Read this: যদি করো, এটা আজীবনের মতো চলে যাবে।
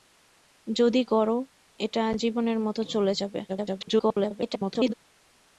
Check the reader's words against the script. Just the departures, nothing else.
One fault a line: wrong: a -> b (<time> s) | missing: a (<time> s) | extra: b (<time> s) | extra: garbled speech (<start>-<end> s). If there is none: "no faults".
extra: garbled speech (3.5-4.9 s)